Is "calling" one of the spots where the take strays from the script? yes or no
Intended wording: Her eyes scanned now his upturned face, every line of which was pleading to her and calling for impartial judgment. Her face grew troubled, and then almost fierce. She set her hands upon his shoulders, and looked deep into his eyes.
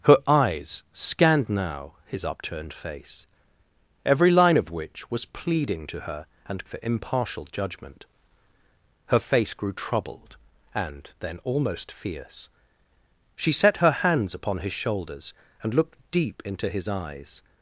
yes